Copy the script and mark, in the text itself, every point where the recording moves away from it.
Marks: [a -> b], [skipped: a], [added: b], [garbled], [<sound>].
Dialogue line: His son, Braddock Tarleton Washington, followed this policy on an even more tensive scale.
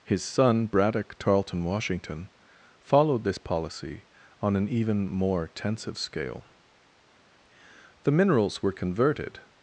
His son, Braddock Tarleton Washington, followed this policy on an even more tensive scale. [added: The minerals were converted]